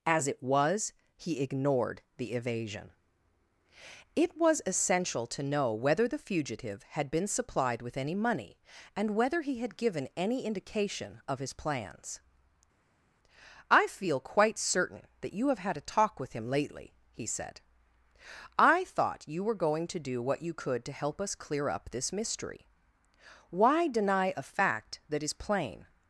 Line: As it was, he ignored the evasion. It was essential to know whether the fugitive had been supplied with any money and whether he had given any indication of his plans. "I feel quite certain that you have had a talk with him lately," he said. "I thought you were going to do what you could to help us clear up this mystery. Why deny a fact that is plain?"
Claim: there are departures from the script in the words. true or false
false